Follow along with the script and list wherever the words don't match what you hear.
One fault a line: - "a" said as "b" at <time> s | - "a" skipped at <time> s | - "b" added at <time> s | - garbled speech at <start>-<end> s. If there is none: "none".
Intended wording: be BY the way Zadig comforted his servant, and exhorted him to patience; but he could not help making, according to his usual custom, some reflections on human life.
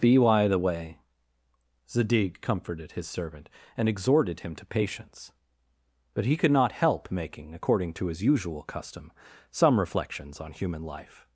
none